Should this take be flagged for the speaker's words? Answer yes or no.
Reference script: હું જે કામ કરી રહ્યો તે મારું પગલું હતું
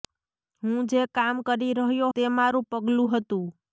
no